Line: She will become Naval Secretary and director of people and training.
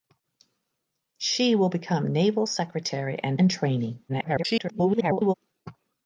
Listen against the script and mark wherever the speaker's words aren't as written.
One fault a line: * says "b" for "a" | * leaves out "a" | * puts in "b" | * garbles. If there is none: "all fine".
* leaves out "director of people"
* garbles